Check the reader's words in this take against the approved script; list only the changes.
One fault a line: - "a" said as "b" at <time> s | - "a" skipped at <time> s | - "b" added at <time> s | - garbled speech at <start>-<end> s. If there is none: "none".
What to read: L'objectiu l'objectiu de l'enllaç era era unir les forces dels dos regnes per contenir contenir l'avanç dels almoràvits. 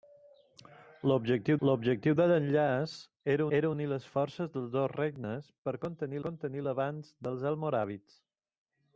none